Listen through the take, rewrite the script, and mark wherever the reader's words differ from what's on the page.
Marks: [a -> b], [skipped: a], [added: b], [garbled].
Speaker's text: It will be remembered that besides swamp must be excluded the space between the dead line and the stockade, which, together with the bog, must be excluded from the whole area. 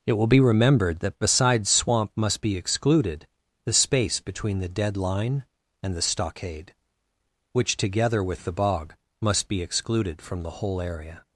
It will be remembered that besides swamp must be excluded the space between the dead line and the stockade, which, together with the bog, must be excluded from the whole area.